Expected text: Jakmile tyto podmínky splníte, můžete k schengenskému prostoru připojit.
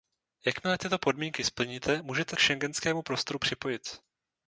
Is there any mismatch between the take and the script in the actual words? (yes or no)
no